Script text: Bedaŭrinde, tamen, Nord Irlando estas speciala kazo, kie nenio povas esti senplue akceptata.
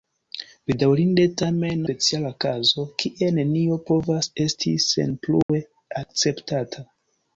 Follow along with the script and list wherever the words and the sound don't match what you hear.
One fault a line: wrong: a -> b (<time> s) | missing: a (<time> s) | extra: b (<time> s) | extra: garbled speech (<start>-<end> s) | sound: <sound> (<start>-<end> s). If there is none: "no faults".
missing: Nord Irlando estas (1.8 s)
sound: dropout (5.4-5.5 s)